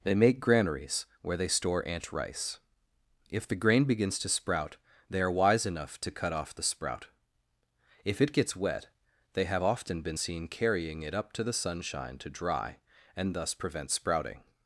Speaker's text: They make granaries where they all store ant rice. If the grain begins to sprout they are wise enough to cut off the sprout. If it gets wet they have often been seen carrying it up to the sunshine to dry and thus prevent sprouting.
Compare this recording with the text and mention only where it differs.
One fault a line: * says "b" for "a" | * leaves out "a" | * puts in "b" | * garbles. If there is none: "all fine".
* leaves out "all"